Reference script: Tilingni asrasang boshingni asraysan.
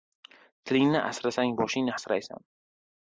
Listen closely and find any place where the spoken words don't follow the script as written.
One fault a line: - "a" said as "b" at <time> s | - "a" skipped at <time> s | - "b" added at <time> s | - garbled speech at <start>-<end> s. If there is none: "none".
none